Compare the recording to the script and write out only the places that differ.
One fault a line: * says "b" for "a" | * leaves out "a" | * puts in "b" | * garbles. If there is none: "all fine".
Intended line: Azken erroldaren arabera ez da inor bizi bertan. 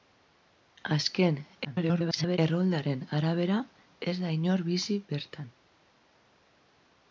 * garbles